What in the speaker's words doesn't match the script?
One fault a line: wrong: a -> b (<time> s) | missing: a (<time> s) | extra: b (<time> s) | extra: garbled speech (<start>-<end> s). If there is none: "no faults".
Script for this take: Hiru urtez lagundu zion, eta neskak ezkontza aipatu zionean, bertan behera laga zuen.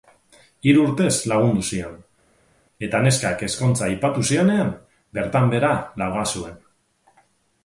no faults